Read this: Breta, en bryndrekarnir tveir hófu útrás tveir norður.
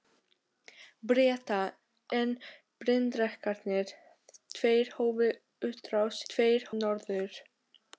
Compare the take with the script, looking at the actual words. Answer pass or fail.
pass